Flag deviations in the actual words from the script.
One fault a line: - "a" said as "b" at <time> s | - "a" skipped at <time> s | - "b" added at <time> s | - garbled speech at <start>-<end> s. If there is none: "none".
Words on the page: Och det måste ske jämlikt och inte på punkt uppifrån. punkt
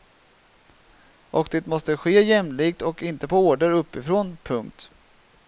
- "punkt" said as "order" at 3.5 s